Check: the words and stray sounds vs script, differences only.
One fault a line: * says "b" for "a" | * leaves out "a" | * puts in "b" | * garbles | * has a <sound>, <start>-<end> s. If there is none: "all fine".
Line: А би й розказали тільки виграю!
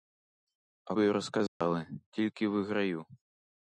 * has a dropout, 1.5-1.6 s